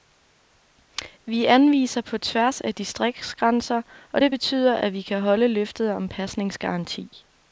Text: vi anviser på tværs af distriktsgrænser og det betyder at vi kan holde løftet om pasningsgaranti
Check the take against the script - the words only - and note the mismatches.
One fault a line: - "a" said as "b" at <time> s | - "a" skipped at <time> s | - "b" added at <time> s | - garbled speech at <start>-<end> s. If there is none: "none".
none